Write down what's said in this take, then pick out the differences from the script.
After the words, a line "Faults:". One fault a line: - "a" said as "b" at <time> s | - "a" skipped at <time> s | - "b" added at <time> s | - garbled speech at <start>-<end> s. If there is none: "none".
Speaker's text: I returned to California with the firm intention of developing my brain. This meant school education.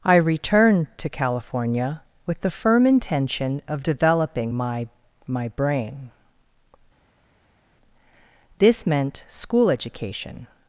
I returned to California with the firm intention of developing my my brain. This meant school education.
Faults:
- "my" added at 5.2 s